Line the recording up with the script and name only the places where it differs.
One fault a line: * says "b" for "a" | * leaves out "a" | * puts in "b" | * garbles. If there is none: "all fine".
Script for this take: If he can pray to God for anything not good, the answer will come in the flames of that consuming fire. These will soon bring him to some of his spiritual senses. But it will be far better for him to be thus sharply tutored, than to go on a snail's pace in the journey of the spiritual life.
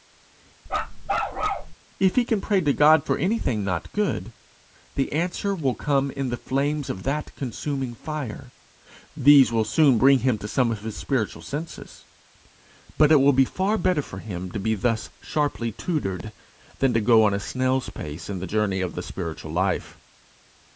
all fine